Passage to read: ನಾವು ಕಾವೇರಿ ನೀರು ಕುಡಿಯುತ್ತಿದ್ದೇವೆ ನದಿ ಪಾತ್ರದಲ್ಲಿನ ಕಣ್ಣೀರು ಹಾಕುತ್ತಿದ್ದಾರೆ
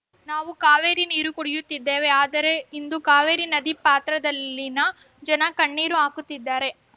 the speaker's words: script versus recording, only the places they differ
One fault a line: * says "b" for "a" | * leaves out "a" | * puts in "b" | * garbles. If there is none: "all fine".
* puts in "ಆದರೆ ಇಂದು ಕಾವೇರಿ"
* puts in "ಜನ"